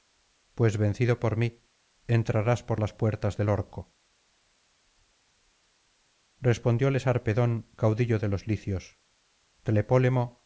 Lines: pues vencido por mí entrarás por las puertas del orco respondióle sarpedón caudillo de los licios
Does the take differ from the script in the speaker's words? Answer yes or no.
no